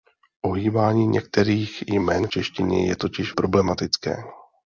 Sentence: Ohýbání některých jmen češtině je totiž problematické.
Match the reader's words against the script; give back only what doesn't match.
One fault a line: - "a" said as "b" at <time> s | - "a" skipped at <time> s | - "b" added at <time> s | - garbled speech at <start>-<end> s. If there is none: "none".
none